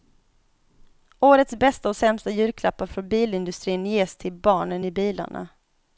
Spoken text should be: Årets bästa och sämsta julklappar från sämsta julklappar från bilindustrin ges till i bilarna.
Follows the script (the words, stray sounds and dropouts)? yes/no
no